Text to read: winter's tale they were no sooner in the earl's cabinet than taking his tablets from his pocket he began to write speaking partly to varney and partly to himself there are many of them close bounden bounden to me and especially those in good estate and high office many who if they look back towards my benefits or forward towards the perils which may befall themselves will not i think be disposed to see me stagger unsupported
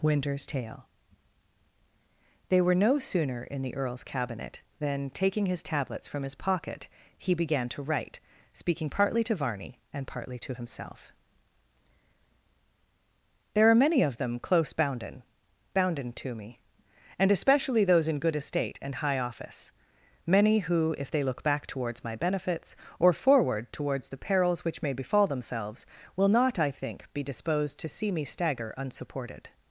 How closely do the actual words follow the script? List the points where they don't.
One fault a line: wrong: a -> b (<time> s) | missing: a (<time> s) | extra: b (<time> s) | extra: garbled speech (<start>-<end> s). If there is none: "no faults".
no faults